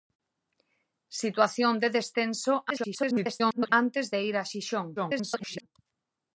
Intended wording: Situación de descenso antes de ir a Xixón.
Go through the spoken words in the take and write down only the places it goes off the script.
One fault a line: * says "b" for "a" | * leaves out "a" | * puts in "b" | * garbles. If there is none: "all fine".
* garbles
* garbles